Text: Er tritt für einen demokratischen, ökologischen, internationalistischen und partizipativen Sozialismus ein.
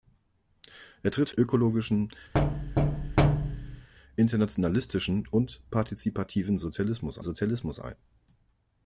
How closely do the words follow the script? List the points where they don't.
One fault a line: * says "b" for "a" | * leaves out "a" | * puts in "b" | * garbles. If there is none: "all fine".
* leaves out "für einen demokratischen"
* puts in "Sozialismus"